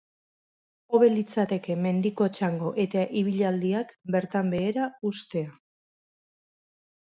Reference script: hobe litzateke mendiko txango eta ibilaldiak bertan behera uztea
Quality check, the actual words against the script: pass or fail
pass